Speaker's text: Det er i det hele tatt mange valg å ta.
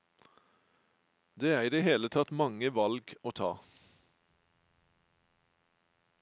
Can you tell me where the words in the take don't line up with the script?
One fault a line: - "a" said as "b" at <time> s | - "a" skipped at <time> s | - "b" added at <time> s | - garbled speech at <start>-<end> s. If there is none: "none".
none